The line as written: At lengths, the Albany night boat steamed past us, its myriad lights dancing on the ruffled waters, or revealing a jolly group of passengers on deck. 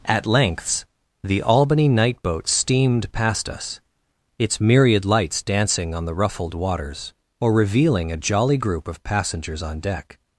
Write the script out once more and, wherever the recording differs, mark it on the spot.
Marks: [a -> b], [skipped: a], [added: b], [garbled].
At lengths, the Albany night boat steamed past us, its myriad lights dancing on the ruffled waters, or revealing a jolly group of passengers on deck.